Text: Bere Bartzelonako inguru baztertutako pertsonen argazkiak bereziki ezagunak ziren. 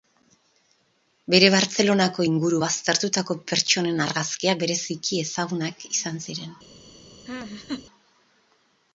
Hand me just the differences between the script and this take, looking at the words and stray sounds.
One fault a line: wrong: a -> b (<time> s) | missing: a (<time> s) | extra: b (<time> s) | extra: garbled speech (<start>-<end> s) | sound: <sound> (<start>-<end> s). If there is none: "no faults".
extra: izan (5.9 s)
sound: laugh (7.3-7.9 s)